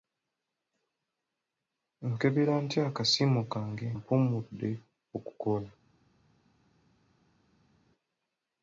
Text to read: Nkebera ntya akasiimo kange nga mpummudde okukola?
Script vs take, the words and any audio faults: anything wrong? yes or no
yes